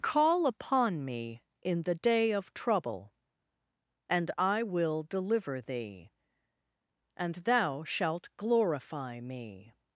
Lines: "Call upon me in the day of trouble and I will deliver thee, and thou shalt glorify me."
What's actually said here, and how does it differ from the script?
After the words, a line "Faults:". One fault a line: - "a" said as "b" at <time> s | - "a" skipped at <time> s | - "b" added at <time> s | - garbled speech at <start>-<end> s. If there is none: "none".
"Call upon me in the day of trouble and I will deliver thee, and thou shalt glorify me."
Faults:
none